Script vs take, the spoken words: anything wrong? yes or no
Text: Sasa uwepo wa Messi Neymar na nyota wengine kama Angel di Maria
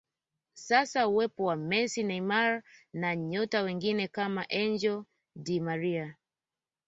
no